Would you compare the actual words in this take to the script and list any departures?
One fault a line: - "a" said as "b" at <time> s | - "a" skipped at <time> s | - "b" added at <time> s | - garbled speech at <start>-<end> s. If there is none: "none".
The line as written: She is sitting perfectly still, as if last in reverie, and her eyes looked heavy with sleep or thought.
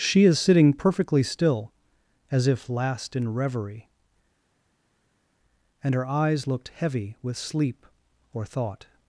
none